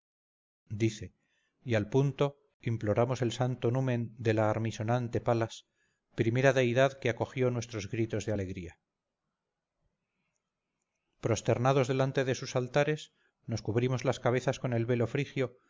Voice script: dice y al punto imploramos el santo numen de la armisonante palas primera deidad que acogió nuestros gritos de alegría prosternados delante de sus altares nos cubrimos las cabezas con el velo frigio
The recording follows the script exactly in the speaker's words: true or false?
true